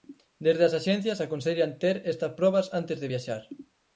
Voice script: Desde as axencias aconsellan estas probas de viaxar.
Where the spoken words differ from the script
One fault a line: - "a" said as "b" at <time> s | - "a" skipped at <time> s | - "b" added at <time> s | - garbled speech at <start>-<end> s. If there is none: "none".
- "ter" added at 1.8 s
- "antes" added at 2.8 s